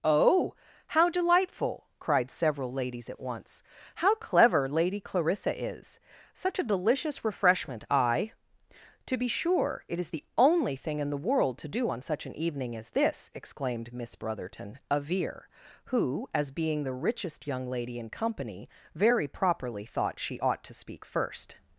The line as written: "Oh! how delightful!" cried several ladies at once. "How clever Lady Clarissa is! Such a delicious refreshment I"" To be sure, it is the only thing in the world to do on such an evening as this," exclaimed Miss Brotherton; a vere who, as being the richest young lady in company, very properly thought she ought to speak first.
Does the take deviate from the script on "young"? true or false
false